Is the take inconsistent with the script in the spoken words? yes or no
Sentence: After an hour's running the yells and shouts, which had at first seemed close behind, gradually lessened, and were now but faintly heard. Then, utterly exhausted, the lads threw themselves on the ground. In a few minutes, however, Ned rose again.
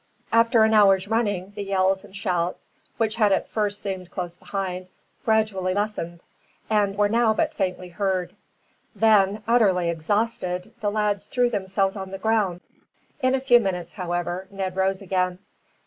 no